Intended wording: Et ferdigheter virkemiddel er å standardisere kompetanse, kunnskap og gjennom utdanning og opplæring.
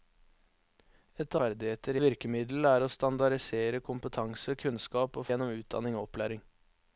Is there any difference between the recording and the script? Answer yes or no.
no